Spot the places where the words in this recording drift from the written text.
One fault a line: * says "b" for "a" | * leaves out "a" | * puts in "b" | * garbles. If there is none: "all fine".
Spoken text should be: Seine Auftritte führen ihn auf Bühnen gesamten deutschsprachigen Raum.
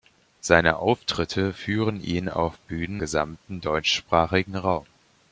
all fine